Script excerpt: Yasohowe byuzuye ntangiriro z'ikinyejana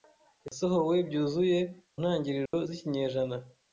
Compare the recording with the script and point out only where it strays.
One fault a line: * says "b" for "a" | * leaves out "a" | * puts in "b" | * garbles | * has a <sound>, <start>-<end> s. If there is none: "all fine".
* has a dropout, 0.5-0.5 s
* has a dropout, 2.5-2.5 s